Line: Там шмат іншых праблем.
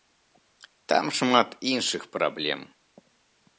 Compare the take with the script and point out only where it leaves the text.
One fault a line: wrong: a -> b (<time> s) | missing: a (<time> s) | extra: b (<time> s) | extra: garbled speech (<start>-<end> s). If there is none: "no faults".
no faults